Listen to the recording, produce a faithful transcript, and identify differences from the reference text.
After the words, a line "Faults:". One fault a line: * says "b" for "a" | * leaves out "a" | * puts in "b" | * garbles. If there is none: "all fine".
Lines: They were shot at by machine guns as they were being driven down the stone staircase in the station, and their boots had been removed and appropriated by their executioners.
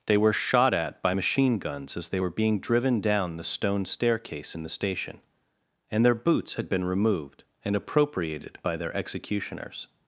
They were shot at by machine guns as they were being driven down the stone staircase in the station, and their boots had been removed and appropriated by their executioners.
Faults:
all fine